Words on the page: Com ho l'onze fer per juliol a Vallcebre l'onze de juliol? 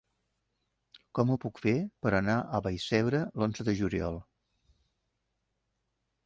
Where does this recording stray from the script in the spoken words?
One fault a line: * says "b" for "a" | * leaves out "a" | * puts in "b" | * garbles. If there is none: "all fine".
* says "puc" for "l'onze"
* says "anar" for "juliol"